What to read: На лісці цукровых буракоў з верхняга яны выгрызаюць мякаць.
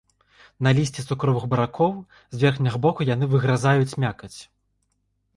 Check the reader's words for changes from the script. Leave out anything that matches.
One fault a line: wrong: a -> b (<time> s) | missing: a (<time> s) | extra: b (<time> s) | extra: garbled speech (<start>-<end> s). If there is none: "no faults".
extra: боку (2.8 s)